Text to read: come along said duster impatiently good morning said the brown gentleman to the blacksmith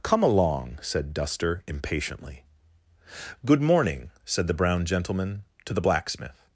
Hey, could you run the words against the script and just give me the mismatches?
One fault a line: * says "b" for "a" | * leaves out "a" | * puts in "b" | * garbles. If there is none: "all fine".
all fine